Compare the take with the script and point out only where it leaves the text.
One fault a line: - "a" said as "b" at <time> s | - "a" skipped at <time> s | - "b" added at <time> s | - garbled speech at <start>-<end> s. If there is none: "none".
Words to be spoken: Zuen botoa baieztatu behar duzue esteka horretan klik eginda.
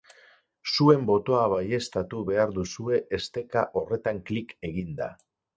none